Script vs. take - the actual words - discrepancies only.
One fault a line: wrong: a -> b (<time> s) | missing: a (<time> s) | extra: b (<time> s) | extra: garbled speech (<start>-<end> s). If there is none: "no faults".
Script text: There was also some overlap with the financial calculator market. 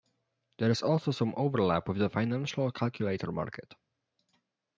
wrong: was -> is (0.7 s)